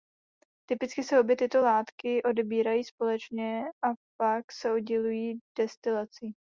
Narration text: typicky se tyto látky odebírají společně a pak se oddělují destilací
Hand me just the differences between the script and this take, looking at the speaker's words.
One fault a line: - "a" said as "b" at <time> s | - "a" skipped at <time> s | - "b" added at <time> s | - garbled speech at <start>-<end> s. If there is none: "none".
- "obě" added at 1.2 s